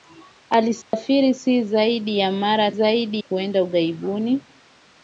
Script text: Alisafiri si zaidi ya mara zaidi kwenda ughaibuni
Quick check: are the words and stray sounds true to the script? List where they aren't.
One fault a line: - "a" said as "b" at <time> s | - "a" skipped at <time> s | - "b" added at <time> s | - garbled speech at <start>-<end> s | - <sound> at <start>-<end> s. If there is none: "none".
- dropout at 0.8-0.9 s